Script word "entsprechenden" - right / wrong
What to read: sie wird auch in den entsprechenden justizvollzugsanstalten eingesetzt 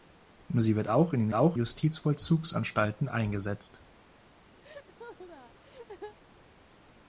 wrong